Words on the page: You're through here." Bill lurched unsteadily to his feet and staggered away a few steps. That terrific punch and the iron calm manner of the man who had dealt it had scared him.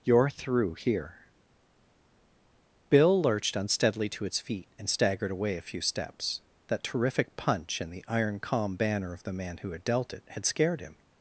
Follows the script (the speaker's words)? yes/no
no